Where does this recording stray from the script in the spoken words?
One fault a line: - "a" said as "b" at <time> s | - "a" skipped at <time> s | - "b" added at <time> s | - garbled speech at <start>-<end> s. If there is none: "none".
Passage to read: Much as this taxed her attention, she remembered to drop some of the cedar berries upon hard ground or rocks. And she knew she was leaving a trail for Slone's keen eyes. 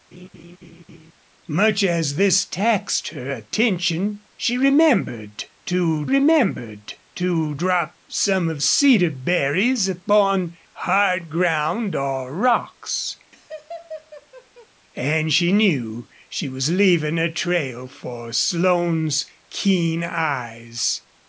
- "remembered to" added at 6.1 s
- "the" skipped at 8.6 s